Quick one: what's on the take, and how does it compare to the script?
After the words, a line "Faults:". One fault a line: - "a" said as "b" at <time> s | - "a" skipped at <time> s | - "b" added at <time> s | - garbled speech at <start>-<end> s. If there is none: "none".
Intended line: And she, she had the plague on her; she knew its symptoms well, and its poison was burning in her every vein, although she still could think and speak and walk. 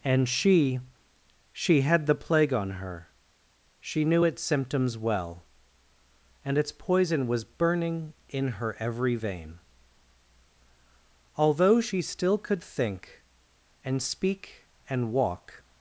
And she, she had the plague on her; she knew its symptoms well, and its poison was burning in her every vein, although she still could think and speak and walk.
Faults:
none